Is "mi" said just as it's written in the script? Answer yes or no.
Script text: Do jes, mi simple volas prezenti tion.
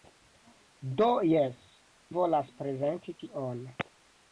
no